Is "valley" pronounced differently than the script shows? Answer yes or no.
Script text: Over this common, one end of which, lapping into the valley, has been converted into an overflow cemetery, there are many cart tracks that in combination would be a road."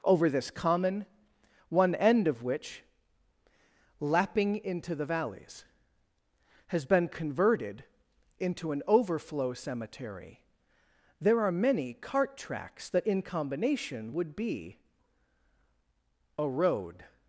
yes